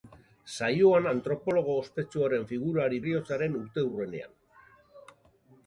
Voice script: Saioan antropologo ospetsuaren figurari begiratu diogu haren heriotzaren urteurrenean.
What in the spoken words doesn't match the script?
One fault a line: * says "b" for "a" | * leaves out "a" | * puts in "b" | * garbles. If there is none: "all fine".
* leaves out "begiratu diogu haren"